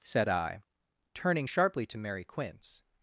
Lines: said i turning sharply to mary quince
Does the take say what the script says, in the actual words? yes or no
yes